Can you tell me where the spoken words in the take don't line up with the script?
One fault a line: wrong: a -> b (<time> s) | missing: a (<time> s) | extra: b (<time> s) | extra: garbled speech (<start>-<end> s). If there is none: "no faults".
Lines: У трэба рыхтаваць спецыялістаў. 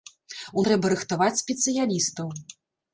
no faults